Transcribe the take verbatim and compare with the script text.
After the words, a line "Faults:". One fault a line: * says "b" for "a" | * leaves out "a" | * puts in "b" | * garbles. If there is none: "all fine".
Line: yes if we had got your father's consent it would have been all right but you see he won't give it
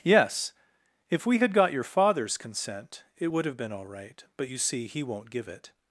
yes if we had got your father's consent it would have been all right but you see he won't give it
Faults:
all fine